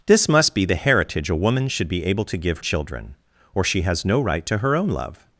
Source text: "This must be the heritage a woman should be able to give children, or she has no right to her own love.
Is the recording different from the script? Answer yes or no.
no